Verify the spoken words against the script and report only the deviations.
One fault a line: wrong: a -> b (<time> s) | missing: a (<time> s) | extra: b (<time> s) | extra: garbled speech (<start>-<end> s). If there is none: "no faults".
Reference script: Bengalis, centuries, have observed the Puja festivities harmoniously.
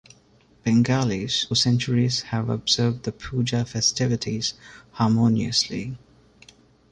no faults